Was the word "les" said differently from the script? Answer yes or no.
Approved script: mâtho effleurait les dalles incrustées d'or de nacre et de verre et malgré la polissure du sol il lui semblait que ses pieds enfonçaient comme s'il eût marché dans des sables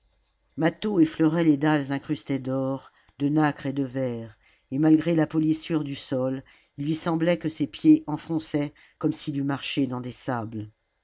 no